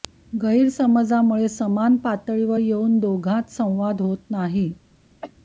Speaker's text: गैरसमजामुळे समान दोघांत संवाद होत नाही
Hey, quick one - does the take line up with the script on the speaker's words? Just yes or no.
no